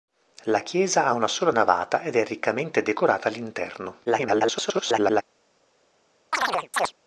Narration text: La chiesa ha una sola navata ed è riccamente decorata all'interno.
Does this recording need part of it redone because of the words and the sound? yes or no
yes